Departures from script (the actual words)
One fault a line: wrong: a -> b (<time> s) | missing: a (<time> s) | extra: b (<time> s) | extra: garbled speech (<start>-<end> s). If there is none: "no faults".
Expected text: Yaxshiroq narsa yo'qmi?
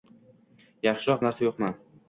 no faults